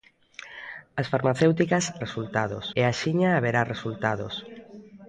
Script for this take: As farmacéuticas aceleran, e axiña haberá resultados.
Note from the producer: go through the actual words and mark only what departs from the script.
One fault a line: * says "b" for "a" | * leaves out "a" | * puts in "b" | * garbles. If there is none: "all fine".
* says "resultados" for "aceleran"